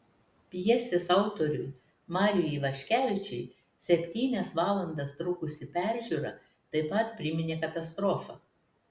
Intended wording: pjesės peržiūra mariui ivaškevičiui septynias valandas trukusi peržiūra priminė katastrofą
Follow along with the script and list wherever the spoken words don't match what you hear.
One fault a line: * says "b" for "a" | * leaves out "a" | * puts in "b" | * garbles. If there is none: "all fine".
* says "autoriui" for "peržiūra"
* puts in "taip pat"